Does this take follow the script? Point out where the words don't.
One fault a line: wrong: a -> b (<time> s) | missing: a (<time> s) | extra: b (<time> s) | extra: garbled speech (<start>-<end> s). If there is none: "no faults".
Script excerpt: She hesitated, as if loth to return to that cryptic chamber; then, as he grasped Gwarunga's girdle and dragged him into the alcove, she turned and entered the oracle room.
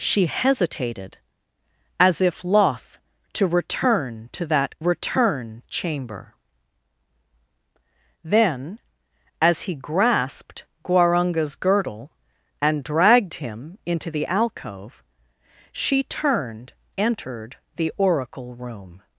wrong: cryptic -> return (4.8 s)
missing: and (16.7 s)